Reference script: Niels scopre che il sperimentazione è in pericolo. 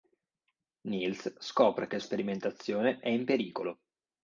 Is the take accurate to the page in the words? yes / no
yes